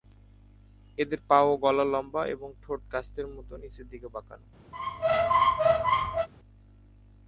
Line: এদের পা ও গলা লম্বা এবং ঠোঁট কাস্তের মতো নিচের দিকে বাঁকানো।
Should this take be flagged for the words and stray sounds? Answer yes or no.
yes